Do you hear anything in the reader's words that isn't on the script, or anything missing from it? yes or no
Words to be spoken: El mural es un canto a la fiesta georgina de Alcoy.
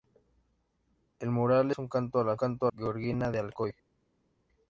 yes